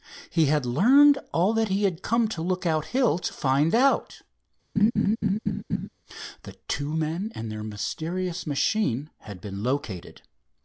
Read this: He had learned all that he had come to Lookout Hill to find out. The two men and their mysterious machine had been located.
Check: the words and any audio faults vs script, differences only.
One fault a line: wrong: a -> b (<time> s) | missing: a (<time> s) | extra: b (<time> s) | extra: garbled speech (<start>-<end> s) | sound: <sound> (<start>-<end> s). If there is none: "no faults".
sound: laugh (4.8-5.9 s)